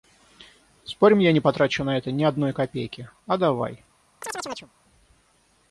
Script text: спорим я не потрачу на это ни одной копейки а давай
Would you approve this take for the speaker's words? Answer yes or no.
yes